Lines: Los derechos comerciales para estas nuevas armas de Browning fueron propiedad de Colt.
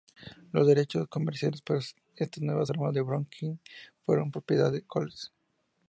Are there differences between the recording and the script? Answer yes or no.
no